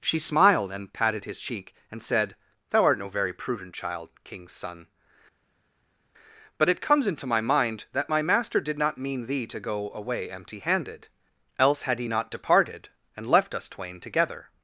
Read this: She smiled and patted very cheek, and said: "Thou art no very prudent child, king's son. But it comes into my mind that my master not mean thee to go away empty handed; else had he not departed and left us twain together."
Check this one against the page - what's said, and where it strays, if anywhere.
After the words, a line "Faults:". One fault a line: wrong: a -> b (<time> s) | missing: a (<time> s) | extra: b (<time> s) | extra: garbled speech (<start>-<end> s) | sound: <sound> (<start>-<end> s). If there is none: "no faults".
She smiled and patted his cheek, and said: "Thou art no very prudent child, king's son. But it comes into my mind that my master did not mean thee to go away empty handed; else had he not departed and left us twain together."
Faults:
wrong: very -> his (1.2 s)
extra: did (8.6 s)